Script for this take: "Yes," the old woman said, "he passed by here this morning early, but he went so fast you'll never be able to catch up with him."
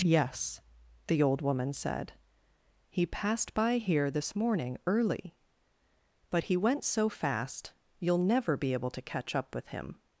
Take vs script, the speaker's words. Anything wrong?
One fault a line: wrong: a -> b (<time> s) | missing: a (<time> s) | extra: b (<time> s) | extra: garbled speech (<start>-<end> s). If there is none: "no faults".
no faults